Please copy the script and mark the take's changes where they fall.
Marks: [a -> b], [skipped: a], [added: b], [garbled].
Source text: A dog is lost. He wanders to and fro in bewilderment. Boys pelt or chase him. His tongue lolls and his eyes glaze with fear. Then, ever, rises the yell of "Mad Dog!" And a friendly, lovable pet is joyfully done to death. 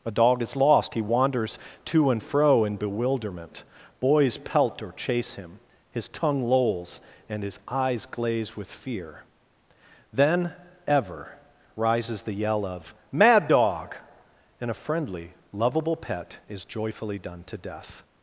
A dog is lost. He wanders to and fro in bewilderment. Boys pelt or chase him. His tongue lolls and his eyes glaze with fear. Then, ever, rises the yell of "Mad Dog!" And a friendly, lovable pet is joyfully done to death.